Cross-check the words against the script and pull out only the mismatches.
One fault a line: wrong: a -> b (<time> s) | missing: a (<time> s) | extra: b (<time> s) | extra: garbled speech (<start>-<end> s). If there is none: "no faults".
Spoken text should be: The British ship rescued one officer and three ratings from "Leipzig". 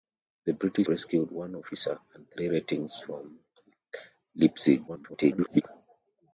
missing: ship (0.9 s)
extra: garbled speech (4.9-5.6 s)